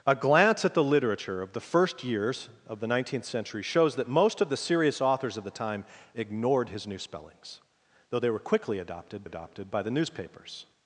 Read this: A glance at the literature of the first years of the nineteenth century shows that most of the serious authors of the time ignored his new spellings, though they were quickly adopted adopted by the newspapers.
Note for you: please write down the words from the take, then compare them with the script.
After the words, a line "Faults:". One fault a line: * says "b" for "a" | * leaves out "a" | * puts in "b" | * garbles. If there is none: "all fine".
A glance at the literature of the first years of the nineteenth century shows that most of the serious authors of the time ignored his new spellings, though they were quickly adopted adopted by the newspapers.
Faults:
all fine